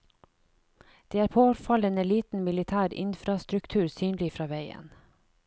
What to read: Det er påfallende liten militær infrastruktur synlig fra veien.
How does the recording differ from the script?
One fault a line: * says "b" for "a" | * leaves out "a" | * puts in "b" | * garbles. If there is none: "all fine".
all fine